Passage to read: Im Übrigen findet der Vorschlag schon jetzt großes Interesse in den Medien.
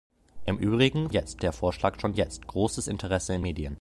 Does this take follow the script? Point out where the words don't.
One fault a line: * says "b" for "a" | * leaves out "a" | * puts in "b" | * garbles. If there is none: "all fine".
* says "jetzt" for "findet"
* leaves out "den"